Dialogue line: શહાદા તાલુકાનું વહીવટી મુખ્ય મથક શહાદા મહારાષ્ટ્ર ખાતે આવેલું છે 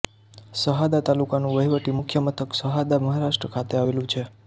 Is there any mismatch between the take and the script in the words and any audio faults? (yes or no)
no